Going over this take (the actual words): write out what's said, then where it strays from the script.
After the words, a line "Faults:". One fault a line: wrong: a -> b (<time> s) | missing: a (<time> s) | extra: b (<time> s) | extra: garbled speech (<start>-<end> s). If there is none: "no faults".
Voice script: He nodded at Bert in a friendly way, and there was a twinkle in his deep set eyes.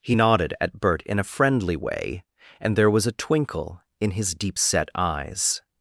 He nodded at Bert in a friendly way, and there was a twinkle in his deep set eyes.
Faults:
no faults